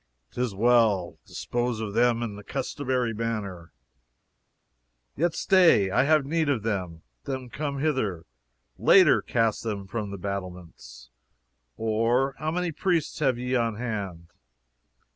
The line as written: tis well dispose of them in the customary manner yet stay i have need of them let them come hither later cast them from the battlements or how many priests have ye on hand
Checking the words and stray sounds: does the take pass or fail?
fail